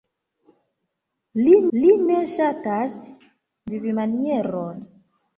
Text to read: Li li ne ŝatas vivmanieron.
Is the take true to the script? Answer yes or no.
yes